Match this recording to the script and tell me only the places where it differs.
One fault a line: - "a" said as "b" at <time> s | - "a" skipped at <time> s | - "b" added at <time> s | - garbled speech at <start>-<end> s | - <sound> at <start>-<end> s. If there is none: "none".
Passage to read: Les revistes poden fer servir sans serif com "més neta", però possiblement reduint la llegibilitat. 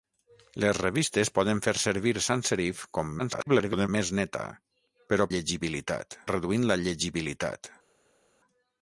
- garbled speech at 3.2-3.9 s
- "possiblement" said as "llegibilitat" at 5.3 s